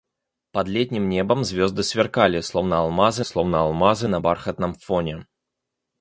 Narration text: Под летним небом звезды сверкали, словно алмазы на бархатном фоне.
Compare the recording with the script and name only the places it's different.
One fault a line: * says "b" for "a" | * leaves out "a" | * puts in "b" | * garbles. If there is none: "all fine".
* puts in "словно алмазы"